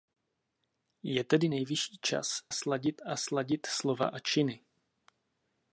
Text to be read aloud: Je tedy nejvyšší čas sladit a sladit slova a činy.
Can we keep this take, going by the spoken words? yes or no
yes